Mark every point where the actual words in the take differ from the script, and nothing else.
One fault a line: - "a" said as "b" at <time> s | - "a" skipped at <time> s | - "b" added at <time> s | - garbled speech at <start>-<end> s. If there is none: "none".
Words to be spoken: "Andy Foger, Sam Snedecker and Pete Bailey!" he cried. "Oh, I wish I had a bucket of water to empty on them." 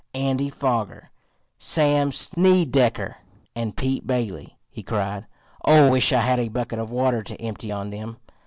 - "I" skipped at 5.9 s